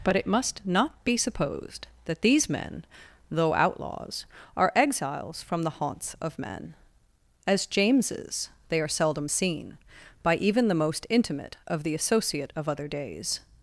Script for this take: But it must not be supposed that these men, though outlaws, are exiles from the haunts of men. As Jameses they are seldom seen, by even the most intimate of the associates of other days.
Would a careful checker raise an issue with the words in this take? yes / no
yes